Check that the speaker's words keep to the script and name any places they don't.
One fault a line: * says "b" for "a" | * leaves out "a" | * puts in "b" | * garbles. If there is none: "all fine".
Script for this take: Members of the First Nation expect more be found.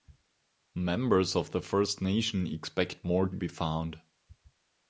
all fine